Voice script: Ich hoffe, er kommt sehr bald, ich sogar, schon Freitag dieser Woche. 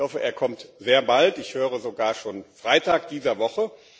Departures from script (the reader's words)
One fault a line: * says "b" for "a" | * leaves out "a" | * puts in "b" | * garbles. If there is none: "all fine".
* puts in "höre"